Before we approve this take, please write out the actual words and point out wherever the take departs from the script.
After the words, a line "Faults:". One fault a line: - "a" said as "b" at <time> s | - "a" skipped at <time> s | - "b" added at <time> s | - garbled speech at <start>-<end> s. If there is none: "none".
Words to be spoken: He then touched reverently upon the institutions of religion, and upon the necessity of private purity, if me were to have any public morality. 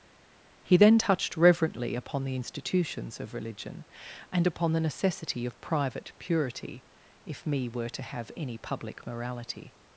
He then touched reverently upon the institutions of religion, and upon the necessity of private purity, if me were to have any public morality.
Faults:
none